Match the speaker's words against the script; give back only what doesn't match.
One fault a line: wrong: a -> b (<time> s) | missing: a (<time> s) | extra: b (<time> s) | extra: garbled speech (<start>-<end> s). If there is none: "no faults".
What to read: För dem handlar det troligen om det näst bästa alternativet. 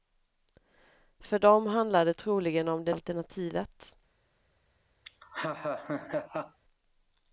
missing: näst bästa (2.9 s)